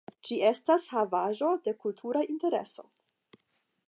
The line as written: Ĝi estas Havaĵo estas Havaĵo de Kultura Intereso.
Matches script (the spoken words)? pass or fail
fail